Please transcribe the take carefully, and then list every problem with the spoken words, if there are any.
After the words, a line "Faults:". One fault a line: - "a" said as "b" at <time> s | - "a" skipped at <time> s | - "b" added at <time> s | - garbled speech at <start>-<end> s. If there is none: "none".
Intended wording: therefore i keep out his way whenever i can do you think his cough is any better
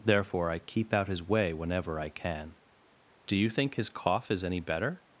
therefore i keep out his way whenever i can do you think his cough is any better
Faults:
none